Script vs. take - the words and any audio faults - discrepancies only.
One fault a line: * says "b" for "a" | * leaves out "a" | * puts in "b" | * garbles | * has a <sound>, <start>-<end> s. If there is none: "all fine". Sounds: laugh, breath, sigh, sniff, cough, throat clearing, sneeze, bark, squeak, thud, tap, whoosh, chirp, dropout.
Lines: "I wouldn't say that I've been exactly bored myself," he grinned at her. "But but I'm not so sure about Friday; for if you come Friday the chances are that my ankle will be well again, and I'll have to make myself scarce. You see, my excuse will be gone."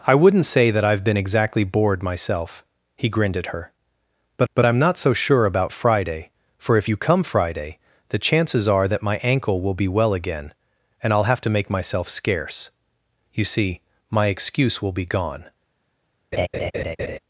* has a laugh, 16.3-17.2 s